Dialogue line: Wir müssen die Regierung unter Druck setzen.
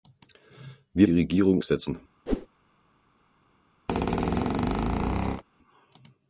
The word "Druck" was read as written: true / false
false